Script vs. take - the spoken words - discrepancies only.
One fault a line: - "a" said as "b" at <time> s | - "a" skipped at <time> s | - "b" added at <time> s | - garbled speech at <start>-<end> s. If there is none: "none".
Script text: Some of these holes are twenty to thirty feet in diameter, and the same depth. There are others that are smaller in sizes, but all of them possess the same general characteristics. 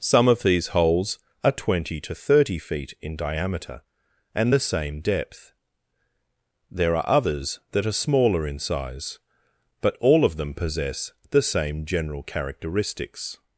- "sizes" said as "size" at 8.6 s